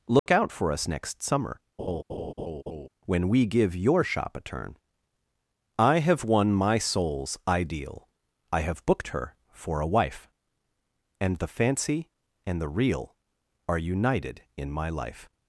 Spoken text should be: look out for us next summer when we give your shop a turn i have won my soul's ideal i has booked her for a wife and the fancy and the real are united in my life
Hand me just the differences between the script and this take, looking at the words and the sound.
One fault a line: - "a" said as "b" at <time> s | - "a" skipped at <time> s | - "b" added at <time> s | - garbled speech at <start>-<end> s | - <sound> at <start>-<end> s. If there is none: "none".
- dropout at 0.2-0.3 s
- laugh at 1.8-2.9 s
- "has" said as "have" at 8.6 s